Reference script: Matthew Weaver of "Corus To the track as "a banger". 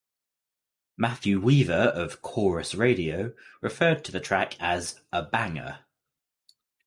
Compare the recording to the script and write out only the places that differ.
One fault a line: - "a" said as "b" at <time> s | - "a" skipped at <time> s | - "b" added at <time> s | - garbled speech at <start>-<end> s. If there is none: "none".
- "Radio referred" added at 2.7 s